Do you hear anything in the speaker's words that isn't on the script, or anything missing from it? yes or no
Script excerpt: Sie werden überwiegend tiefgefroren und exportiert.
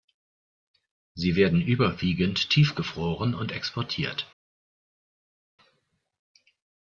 no